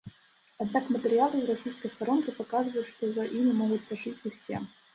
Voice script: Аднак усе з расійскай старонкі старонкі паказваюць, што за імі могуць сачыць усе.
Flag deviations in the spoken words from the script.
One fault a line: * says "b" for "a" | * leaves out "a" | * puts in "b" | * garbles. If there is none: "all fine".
* says "матэрыялы" for "усе"
* leaves out "старонкі"